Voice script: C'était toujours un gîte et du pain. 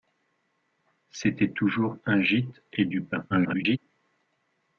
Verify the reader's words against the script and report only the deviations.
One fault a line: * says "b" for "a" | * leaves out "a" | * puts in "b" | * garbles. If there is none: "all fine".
* garbles